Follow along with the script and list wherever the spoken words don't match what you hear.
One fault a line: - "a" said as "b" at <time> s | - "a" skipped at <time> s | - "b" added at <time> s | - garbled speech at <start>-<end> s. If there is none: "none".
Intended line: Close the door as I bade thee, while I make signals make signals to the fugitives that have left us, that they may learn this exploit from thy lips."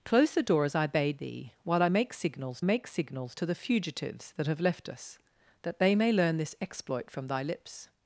none